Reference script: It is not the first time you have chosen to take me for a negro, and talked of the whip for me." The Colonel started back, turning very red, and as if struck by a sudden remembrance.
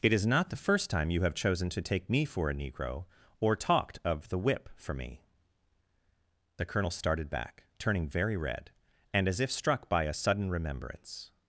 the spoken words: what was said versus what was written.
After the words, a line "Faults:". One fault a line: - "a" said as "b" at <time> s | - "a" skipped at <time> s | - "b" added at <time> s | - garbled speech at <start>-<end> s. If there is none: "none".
It is not the first time you have chosen to take me for a negro, or talked of the whip for me." The Colonel started back, turning very red, and as if struck by a sudden remembrance.
Faults:
- "and" said as "or" at 3.4 s